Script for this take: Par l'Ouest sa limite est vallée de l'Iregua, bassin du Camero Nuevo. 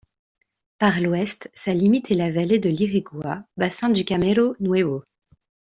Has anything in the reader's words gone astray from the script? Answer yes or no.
yes